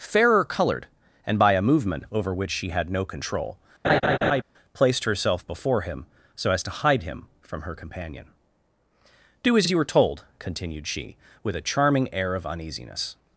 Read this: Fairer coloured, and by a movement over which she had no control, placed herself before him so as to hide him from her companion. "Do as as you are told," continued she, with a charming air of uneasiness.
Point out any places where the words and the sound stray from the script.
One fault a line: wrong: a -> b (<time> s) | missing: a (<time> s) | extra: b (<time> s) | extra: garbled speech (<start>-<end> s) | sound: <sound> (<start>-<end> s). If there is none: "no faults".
sound: laugh (3.8-4.4 s)